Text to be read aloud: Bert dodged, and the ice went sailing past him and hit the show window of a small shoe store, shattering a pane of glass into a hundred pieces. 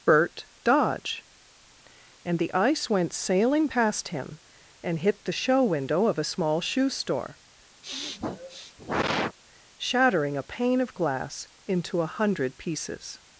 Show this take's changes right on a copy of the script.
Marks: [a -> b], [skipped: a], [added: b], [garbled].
Bert [dodged, -> dodge] and the ice went sailing past him and hit the show window of a small shoe store, shattering a pane of glass into a hundred pieces.